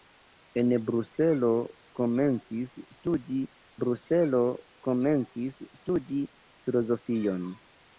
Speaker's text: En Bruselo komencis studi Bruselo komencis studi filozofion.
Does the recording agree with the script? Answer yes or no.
yes